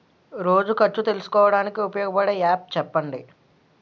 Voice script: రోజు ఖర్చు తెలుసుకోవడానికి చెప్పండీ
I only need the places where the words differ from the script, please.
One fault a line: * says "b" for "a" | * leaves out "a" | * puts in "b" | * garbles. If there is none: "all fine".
* puts in "ఉపయోగపడే యాప్"